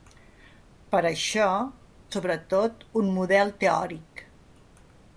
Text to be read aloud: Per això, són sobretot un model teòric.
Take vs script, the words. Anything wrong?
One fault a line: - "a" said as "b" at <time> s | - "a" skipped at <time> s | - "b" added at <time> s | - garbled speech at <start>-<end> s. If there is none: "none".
- "són" skipped at 1.5 s